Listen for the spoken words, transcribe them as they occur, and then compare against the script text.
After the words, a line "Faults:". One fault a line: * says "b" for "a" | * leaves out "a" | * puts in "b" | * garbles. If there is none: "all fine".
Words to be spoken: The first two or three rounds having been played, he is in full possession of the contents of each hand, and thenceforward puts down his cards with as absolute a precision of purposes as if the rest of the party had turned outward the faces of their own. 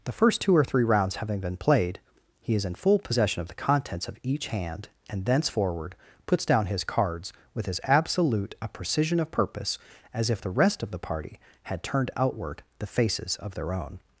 The first two or three rounds having been played, he is in full possession of the contents of each hand, and thenceforward puts down his cards with as absolute a precision of purpose as if the rest of the party had turned outward the faces of their own.
Faults:
* says "purpose" for "purposes"